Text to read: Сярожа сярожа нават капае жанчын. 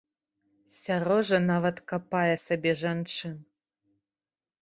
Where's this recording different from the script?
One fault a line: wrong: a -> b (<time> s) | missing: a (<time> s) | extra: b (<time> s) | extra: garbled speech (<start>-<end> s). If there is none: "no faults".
missing: сярожа (1.4 s)
extra: сабе (2.4 s)